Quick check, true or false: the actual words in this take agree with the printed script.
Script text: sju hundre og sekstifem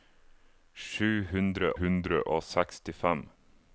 false